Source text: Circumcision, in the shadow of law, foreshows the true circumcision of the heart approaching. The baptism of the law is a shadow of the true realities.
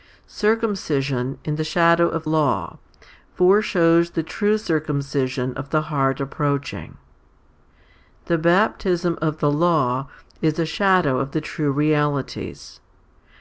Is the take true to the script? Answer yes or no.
yes